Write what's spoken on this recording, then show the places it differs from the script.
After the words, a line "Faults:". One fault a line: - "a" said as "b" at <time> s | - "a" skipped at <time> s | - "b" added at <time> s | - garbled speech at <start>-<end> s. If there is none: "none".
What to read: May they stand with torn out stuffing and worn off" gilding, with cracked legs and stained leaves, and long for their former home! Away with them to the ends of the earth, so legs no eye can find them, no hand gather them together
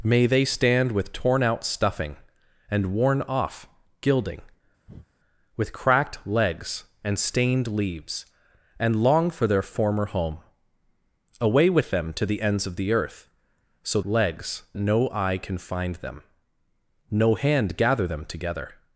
May they stand with torn out stuffing and worn off" gilding, with cracked legs and stained leaves, and long for their former home! Away with them to the ends of the earth, so legs no eye can find them, no hand gather them together
Faults:
none